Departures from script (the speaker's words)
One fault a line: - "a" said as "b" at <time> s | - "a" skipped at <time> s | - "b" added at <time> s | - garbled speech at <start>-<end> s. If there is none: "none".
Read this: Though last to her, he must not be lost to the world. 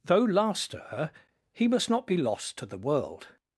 none